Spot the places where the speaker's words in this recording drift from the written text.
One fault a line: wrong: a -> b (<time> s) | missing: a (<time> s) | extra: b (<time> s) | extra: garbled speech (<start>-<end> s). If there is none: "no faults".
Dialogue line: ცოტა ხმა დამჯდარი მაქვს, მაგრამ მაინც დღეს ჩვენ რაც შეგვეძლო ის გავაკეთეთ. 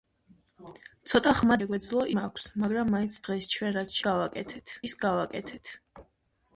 wrong: დამჯდარი -> შეგვეძლო (1.6 s)
wrong: შეგვეძლო -> გავაკეთეთ (4.1 s)